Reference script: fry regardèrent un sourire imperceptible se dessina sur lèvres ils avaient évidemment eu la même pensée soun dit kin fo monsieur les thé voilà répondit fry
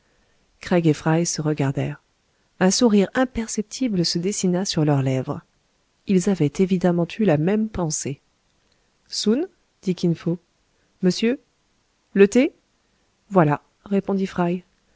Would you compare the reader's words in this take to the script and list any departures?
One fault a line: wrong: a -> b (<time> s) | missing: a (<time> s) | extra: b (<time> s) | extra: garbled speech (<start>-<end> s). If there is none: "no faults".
extra: se (1.3 s)
extra: leurs (4.8 s)
wrong: les -> le (12.1 s)